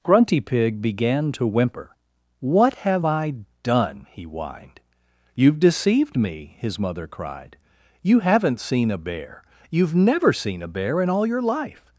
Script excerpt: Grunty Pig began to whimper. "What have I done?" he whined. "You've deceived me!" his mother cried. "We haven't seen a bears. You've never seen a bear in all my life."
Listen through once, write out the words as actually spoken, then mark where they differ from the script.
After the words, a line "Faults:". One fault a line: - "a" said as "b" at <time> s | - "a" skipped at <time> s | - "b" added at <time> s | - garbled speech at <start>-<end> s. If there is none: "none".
Grunty Pig began to whimper. "What have I done?" he whined. "You've deceived me!" his mother cried. "You haven't seen a bear. You've never seen a bear in all your life."
Faults:
- "We" said as "You" at 8.0 s
- "bears" said as "bear" at 9.0 s
- "my" said as "your" at 11.3 s